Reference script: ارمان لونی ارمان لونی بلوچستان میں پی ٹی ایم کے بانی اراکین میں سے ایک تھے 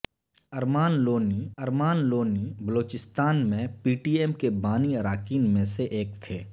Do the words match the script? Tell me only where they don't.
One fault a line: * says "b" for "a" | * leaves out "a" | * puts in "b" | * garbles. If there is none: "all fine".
all fine